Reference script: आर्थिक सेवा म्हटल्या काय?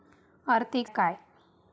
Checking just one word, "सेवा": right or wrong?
wrong